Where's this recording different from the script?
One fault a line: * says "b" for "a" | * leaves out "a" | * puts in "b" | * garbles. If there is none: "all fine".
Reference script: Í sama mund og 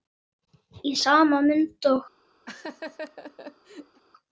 all fine